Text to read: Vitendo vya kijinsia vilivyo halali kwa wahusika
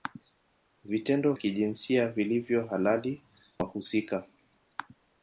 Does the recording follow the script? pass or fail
fail